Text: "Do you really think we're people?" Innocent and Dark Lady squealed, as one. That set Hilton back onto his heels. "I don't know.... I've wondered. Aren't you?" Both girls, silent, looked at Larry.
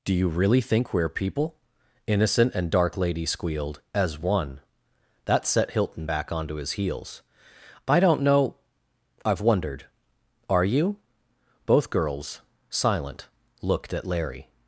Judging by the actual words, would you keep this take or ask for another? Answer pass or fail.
fail